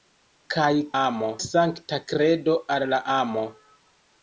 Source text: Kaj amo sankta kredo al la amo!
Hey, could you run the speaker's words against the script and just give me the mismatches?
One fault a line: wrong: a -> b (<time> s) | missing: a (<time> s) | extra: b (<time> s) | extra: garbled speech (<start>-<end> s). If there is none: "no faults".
no faults